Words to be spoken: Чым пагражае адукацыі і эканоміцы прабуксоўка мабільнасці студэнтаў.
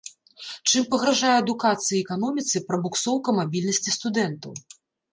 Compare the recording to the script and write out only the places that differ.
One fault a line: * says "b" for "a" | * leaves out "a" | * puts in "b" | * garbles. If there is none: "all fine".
all fine